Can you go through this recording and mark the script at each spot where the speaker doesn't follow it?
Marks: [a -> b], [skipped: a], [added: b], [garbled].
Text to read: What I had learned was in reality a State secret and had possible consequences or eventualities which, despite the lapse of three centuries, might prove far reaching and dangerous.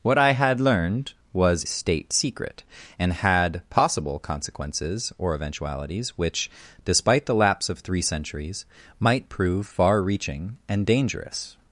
What I had learned was [skipped: in reality a] State secret and had possible consequences or eventualities which, despite the lapse of three centuries, might prove far reaching and dangerous.